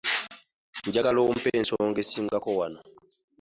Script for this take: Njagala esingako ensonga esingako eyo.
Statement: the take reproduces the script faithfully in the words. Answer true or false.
false